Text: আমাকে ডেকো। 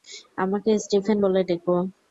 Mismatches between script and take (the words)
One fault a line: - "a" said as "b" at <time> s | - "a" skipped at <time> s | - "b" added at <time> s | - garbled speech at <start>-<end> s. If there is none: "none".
- "স্টিফেন বলে" added at 0.8 s